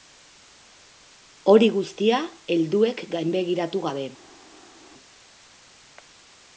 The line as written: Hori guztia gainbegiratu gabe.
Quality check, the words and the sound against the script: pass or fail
fail